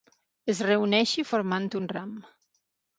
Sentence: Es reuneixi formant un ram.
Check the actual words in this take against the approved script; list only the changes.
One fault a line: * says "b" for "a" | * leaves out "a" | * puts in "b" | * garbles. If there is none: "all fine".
all fine